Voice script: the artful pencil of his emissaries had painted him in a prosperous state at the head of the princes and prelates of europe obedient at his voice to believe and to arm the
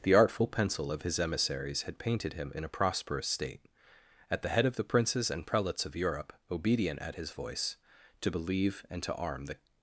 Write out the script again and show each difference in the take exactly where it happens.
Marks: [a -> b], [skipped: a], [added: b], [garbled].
the artful pencil of his emissaries had painted him in a prosperous state at the head of the princes and prelates of europe obedient at his voice to believe and to arm the